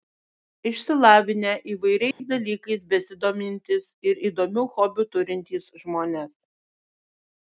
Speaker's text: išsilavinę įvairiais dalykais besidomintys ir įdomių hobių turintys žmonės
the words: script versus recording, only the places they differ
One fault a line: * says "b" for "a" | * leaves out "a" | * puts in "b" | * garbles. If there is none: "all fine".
all fine